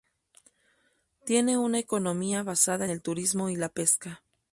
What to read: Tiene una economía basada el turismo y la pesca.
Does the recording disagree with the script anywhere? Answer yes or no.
no